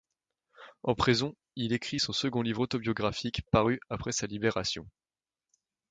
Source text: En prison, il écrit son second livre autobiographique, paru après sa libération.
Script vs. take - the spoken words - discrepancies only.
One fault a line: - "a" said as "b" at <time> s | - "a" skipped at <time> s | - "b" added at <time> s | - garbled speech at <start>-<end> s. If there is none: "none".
none